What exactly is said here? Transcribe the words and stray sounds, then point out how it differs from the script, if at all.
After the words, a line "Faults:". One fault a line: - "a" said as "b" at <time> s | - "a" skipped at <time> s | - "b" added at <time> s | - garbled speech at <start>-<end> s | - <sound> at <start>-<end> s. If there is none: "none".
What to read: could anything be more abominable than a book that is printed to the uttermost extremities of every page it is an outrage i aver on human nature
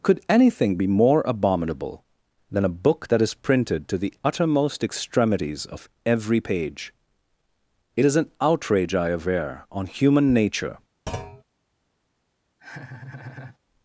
could anything be more abominable than a book that is printed to the uttermost extremities of every page it is an outrage i aver on human nature
Faults:
- thud at 11.1-11.4 s
- laugh at 12.6-13.6 s